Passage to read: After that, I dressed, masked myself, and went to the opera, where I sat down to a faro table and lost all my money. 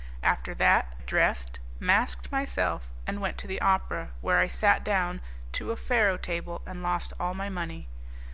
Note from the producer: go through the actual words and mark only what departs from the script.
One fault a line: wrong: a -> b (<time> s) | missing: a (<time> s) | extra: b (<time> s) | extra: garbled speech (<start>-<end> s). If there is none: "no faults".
missing: I (0.9 s)